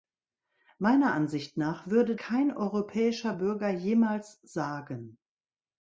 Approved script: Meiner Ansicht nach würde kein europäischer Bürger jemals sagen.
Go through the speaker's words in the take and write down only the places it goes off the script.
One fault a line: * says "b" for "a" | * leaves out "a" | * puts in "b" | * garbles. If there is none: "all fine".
all fine